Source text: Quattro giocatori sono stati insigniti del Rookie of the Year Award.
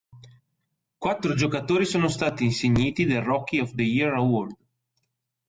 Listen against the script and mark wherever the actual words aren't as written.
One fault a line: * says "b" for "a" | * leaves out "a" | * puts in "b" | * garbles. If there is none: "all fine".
all fine